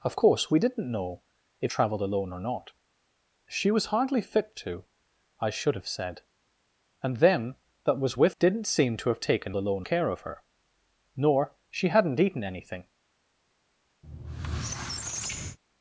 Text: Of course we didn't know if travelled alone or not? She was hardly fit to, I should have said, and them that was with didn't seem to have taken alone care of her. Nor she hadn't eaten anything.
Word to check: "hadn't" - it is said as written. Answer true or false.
true